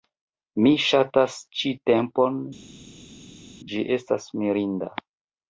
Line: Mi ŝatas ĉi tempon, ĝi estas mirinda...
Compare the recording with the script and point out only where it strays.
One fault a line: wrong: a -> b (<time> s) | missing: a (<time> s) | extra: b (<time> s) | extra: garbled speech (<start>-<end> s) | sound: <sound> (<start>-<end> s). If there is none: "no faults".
no faults